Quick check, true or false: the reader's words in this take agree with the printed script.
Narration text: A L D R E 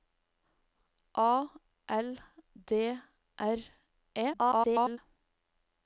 false